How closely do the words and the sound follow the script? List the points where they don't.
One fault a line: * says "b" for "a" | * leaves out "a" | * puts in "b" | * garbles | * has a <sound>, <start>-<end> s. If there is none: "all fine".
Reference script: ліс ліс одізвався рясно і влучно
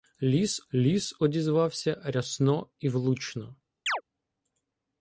* has a chirp, 3.9-4.0 s